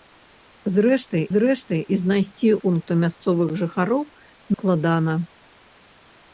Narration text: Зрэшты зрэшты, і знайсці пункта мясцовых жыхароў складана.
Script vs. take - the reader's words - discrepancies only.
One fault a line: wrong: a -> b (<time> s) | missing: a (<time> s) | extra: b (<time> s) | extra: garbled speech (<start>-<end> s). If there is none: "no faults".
no faults